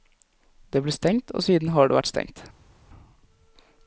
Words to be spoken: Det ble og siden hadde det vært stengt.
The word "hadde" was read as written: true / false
false